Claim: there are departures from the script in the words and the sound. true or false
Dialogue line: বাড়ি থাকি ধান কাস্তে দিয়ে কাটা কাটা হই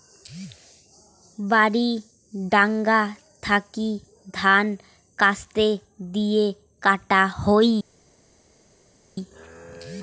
true